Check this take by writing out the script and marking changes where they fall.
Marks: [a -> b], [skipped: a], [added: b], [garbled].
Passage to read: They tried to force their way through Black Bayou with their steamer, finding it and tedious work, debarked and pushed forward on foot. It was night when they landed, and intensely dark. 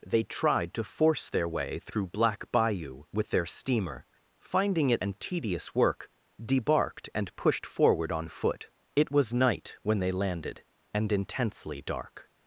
They tried to force their way through Black Bayou with their steamer, finding it and tedious work, debarked and pushed forward on foot. It was night when they landed, and intensely dark.